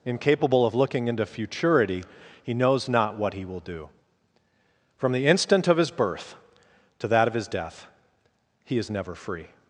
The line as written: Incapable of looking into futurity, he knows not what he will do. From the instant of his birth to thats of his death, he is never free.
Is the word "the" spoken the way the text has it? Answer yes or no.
yes